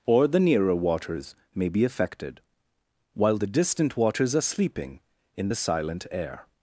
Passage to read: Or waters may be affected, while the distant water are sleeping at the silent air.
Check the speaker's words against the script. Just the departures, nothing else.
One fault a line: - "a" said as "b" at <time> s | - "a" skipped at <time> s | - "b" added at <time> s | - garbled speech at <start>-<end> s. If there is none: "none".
- "the nearer" added at 0.3 s
- "water" said as "waters" at 4.0 s
- "at" said as "in" at 5.4 s